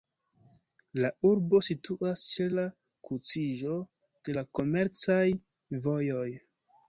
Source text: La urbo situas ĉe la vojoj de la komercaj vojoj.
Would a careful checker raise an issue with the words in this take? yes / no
yes